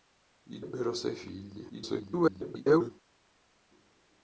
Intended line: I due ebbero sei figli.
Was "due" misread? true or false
true